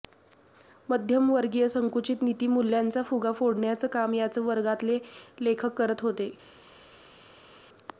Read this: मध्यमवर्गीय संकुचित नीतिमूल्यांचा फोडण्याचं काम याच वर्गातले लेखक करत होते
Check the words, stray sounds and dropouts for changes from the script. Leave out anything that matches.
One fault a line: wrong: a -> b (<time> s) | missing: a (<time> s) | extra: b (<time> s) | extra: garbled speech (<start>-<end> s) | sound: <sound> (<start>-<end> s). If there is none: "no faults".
extra: फुगा (3.0 s)